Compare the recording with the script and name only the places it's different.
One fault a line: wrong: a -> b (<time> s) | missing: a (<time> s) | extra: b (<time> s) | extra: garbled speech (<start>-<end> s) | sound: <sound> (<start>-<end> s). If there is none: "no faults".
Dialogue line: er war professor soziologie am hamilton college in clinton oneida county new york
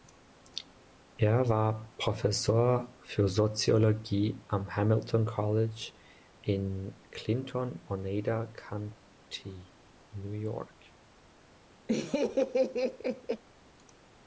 extra: für (3.0 s)
sound: laugh (11.9-13.4 s)